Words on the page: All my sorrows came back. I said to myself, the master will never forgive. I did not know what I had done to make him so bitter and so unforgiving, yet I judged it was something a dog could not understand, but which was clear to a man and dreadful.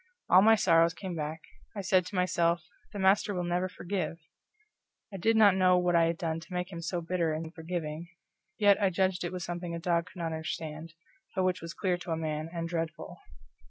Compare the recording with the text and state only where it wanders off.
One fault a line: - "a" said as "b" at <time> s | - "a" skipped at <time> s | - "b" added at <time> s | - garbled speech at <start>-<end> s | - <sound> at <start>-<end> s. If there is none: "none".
- "so" skipped at 7.5 s